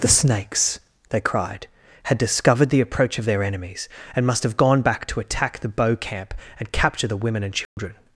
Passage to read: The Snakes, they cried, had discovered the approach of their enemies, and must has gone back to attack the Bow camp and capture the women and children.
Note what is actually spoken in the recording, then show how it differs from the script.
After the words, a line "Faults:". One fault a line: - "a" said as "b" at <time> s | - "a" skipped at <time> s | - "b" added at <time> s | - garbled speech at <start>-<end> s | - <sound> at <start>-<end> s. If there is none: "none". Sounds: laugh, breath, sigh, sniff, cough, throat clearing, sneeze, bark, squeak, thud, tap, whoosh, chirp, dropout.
The Snakes, they cried, had discovered the approach of their enemies, and must have gone back to attack the Bow camp and capture the women and children.
Faults:
- "has" said as "have" at 4.4 s
- dropout at 7.6-7.8 s